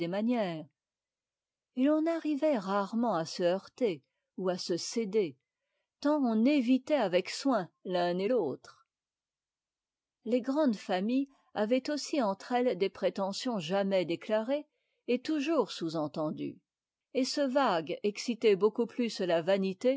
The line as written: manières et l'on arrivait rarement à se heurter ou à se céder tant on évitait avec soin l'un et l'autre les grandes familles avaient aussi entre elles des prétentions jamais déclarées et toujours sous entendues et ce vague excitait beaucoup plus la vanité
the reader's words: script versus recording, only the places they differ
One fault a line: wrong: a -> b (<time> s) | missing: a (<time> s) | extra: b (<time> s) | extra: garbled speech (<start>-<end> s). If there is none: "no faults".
no faults